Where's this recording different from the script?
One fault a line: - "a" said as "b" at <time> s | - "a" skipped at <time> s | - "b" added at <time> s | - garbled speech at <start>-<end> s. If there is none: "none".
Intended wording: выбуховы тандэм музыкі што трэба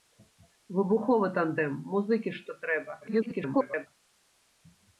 - garbled speech at 3.0-3.9 s